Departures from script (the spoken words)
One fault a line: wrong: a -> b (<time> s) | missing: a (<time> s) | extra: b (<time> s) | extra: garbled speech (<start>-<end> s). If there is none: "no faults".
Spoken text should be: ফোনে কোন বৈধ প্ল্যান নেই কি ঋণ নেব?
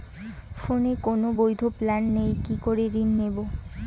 extra: করে (2.6 s)